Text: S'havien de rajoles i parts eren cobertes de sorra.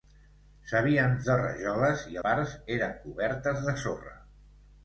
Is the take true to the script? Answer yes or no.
yes